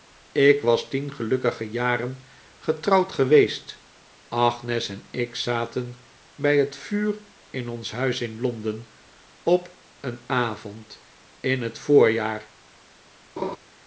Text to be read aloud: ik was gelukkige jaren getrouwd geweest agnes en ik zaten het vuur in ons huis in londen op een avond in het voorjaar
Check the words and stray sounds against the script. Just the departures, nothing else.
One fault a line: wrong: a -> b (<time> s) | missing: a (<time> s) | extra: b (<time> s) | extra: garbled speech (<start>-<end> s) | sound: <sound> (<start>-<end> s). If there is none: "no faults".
extra: tien (0.9 s)
extra: bij (6.3 s)
sound: laugh (13.4-13.6 s)